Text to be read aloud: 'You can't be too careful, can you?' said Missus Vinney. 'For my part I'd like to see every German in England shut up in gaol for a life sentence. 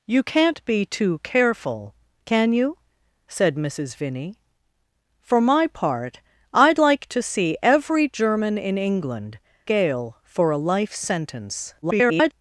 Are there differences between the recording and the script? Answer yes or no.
yes